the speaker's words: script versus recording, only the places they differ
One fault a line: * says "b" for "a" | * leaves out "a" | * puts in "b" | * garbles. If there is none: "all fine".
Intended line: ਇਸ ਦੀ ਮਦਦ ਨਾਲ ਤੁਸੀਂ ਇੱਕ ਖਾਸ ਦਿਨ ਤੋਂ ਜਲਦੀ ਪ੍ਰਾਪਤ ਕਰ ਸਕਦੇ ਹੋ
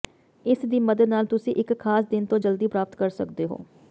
all fine